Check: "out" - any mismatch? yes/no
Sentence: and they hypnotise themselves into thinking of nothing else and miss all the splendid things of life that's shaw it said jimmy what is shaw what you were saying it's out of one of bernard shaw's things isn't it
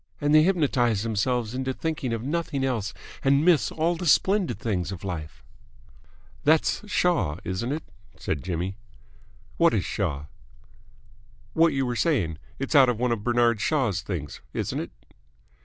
no